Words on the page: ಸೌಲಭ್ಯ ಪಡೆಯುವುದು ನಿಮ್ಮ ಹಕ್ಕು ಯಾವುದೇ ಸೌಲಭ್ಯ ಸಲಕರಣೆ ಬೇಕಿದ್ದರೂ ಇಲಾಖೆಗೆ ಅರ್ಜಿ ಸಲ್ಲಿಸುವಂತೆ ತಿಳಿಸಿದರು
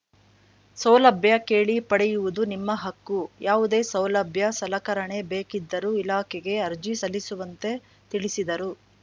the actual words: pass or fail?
fail